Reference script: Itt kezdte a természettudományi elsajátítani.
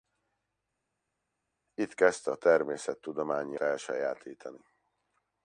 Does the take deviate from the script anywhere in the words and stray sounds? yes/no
no